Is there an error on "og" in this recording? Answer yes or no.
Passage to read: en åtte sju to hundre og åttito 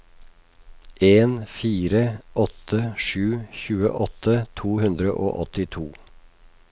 no